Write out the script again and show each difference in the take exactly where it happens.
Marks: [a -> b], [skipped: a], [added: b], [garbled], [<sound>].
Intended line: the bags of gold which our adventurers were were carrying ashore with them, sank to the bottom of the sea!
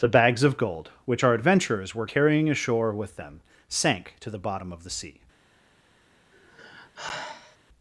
the bags of gold which our adventurers were [skipped: were] carrying ashore with them, sank to the bottom of the sea! [sigh]